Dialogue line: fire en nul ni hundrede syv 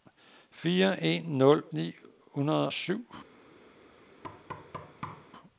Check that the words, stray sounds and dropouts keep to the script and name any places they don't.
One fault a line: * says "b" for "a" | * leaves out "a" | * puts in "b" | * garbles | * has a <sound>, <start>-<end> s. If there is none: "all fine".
* has a thud, 4.2-5.3 s